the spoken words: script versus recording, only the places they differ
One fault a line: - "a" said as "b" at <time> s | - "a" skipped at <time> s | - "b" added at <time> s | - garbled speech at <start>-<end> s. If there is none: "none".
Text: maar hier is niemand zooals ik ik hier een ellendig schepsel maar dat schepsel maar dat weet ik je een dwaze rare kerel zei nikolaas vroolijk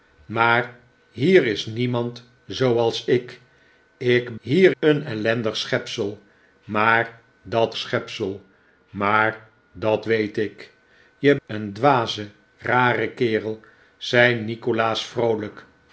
none